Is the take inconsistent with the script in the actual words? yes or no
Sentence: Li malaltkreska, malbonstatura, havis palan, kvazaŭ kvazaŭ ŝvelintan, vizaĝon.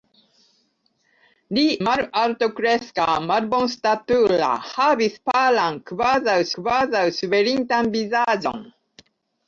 no